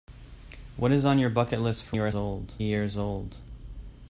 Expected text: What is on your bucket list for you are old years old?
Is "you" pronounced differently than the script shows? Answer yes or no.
no